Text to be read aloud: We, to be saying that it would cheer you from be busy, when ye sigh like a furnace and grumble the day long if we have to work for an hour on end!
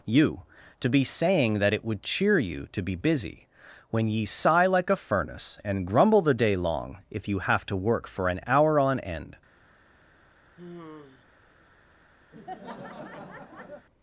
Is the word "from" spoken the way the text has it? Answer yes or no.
no